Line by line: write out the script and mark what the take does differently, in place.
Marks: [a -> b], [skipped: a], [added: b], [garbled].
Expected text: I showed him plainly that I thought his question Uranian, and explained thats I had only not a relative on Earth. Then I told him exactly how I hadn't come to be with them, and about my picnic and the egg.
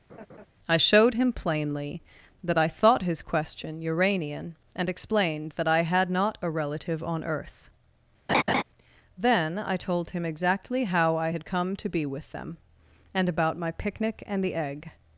I showed him plainly that I thought his question Uranian, and explained [thats -> that] I had [skipped: only] not a relative on Earth. Then I told him exactly how I [hadn't -> had] come to be with them, and about my picnic and the egg.